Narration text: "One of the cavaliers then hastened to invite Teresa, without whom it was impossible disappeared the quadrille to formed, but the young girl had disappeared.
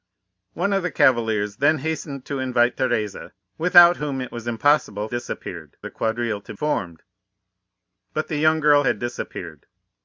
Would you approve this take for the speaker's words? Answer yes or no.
yes